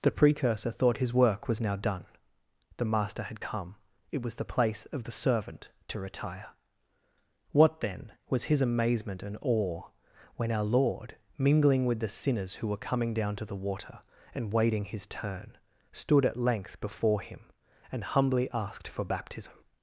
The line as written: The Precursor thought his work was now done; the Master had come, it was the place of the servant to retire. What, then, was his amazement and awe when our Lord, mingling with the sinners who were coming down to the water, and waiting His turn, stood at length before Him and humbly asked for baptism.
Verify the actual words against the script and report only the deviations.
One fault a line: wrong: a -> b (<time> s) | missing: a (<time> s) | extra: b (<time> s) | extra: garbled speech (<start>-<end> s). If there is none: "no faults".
no faults